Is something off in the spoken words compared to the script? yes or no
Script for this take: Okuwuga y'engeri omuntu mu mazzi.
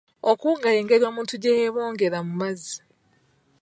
yes